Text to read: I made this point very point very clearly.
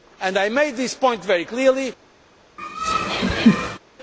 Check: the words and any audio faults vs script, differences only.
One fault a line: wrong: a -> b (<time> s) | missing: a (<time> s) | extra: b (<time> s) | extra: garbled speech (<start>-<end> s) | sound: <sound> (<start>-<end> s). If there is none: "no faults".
missing: point very (1.4 s)
sound: laugh (2.6-3.8 s)